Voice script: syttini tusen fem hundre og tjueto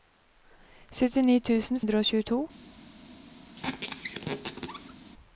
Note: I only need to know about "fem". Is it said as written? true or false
false